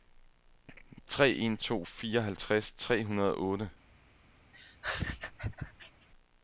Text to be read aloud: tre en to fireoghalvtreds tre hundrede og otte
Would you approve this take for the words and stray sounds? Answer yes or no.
no